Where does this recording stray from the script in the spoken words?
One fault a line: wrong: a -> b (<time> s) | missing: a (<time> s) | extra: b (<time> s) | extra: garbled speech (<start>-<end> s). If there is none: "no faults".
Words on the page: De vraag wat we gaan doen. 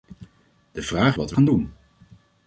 no faults